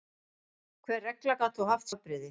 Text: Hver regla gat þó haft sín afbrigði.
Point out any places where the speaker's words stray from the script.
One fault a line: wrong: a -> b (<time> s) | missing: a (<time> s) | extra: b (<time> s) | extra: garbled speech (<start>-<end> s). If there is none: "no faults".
missing: sín (1.9 s)